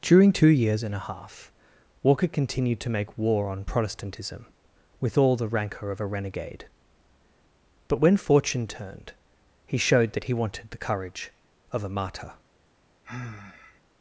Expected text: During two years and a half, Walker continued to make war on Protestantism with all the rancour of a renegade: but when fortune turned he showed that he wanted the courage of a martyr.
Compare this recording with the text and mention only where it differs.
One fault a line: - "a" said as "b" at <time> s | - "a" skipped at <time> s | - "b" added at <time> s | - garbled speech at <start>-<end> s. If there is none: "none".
none